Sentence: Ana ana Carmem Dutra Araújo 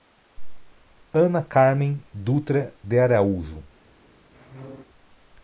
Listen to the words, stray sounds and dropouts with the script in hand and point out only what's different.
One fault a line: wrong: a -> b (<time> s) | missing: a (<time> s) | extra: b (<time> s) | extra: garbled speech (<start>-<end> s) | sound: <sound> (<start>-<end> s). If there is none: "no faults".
missing: ana (1.4 s)
extra: de (2.8 s)
sound: squeak (4.3-4.8 s)